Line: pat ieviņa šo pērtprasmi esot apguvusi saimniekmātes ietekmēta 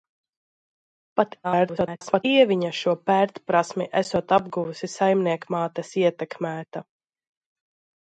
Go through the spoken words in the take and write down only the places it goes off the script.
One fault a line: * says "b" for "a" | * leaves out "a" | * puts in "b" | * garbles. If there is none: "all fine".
* garbles